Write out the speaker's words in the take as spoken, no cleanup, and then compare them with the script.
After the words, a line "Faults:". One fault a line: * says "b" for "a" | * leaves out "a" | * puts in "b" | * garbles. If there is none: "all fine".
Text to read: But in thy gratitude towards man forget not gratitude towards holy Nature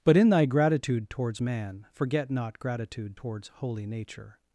But in thy gratitude towards man forget not gratitude towards holy Nature
Faults:
all fine